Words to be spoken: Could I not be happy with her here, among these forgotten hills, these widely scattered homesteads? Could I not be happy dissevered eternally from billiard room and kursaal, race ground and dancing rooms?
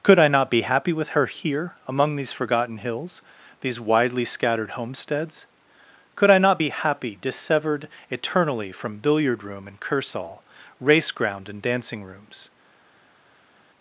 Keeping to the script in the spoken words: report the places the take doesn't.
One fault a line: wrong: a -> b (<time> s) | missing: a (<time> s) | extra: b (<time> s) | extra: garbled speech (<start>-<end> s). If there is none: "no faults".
no faults